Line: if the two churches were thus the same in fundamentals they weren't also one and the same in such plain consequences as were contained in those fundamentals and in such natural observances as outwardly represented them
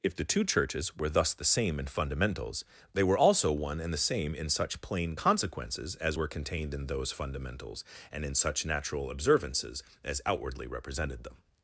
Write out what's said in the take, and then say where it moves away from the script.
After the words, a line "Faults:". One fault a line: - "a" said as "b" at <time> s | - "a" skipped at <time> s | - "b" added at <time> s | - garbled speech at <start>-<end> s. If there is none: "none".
if the two churches were thus the same in fundamentals they were also one and the same in such plain consequences as were contained in those fundamentals and in such natural observances as outwardly represented them
Faults:
- "weren't" said as "were" at 3.0 s